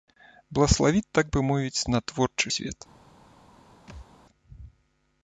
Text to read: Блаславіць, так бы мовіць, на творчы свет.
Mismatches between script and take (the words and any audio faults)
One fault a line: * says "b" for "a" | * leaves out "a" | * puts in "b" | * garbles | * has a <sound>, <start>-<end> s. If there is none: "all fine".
* has a thud, 3.9-4.1 s